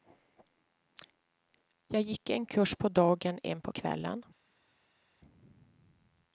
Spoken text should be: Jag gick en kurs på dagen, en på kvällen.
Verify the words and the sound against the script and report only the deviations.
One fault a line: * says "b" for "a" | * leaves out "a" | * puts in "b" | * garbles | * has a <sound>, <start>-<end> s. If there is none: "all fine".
all fine